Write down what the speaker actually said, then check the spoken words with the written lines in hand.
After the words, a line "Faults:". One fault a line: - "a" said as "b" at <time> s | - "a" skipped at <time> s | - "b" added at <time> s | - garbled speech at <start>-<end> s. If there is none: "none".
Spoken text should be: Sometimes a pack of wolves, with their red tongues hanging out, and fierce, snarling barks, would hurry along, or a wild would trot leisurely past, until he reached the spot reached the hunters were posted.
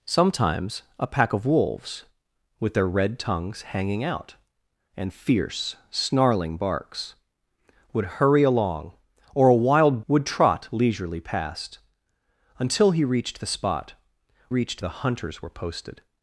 Sometimes a pack of wolves, with their red tongues hanging out, and fierce, snarling barks, would hurry along, or a wild would trot leisurely past, until he reached the spot reached the hunters were posted.
Faults:
none